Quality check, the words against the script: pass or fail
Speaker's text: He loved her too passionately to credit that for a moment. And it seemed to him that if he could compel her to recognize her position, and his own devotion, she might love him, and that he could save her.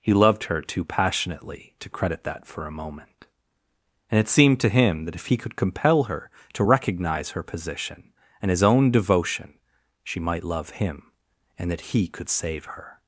pass